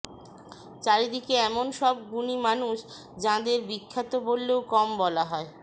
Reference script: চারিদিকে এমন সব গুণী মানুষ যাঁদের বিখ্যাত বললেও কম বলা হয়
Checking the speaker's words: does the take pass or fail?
pass